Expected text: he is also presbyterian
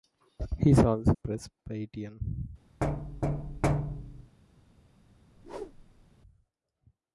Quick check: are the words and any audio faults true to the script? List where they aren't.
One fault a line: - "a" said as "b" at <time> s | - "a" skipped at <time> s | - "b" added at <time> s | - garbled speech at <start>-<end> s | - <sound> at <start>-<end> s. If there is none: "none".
- thud at 2.8-4.4 s
- whoosh at 5.4-6.1 s